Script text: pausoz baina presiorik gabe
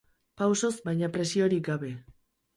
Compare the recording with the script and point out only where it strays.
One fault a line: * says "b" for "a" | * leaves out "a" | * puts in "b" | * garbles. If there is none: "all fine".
all fine